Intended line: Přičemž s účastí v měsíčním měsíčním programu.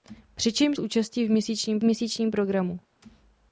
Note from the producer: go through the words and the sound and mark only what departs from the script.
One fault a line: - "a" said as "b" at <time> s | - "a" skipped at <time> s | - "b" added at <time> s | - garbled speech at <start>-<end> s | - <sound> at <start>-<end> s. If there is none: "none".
none